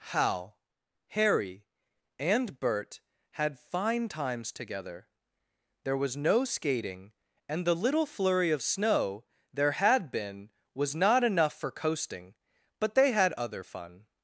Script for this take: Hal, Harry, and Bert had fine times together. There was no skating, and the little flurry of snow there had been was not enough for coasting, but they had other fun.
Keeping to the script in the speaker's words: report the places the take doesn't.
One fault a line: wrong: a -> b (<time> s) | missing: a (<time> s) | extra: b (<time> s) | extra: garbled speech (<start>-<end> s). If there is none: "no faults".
no faults